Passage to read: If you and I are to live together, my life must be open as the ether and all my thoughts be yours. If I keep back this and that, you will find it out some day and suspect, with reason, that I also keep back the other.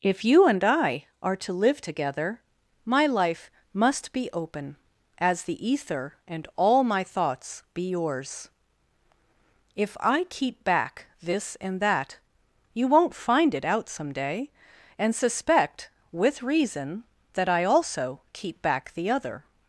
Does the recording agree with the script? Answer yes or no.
no